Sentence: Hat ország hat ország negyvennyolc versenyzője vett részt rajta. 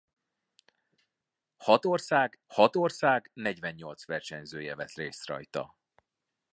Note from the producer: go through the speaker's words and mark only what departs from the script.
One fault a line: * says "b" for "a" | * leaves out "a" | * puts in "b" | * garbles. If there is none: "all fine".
all fine